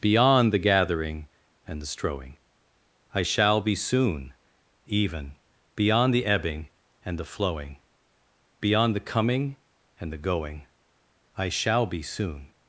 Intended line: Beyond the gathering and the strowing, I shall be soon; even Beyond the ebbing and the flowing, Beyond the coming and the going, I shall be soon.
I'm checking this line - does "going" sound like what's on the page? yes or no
yes